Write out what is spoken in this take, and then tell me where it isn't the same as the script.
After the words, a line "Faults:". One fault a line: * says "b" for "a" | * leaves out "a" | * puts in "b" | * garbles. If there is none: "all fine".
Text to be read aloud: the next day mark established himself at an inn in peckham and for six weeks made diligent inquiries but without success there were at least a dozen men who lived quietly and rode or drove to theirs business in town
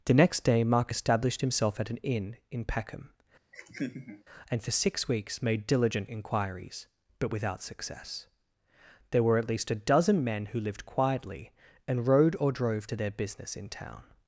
the next day mark established himself at an inn in peckham and for six weeks made diligent inquiries but without success there were at least a dozen men who lived quietly and rode or drove to their business in town
Faults:
* says "their" for "theirs"